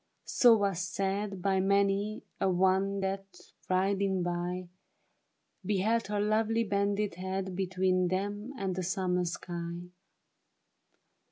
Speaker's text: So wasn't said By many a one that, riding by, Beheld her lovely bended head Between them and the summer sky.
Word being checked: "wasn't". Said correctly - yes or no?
no